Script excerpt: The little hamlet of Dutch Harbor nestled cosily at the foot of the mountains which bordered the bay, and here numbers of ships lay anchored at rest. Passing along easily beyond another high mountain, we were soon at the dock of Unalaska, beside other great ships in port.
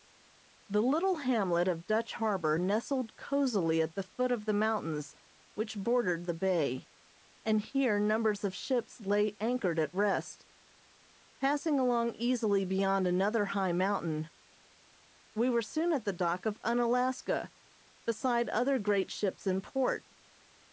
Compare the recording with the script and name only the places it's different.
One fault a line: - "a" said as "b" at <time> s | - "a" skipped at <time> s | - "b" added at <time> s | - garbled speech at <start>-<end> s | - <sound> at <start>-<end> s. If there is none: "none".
none